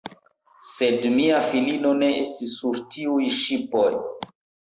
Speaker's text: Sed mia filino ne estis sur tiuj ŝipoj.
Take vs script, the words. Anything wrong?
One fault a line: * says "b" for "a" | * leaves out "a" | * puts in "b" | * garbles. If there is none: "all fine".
all fine